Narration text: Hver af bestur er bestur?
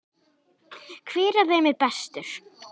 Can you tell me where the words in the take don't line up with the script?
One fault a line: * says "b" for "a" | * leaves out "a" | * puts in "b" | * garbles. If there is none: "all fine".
* says "þeim" for "bestur"